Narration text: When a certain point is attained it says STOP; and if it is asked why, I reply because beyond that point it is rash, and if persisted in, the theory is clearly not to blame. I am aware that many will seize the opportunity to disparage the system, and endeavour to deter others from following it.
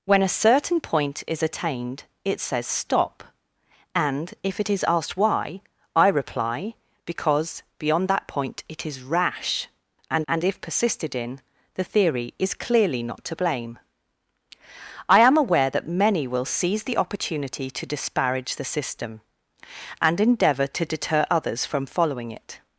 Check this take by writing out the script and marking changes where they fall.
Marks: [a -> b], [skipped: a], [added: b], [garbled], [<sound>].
When a certain point is attained it says STOP; and if it is asked why, I reply because beyond that point it is rash, and [added: and] if persisted in, the theory is clearly not to blame. I am aware that many will seize the opportunity to disparage the system, and endeavour to deter others from following it.